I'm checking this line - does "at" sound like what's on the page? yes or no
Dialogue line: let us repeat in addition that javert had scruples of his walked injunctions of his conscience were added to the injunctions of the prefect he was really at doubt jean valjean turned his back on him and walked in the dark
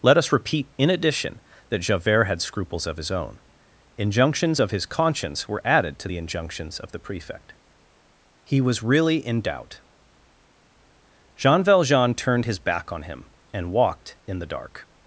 no